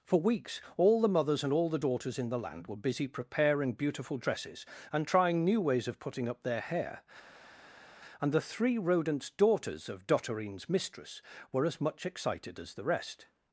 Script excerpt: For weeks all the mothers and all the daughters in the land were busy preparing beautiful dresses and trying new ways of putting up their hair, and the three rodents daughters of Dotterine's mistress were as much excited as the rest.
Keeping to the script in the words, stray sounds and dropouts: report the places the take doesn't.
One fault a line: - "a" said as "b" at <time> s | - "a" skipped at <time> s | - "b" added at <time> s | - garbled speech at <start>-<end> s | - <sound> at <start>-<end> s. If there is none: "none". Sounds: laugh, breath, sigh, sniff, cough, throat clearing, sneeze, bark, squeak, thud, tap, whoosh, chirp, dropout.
none